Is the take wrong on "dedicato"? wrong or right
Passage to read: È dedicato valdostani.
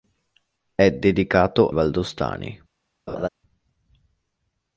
right